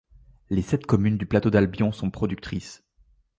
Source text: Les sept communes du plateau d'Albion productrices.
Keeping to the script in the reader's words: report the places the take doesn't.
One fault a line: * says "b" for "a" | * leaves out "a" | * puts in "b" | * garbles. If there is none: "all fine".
* puts in "sont"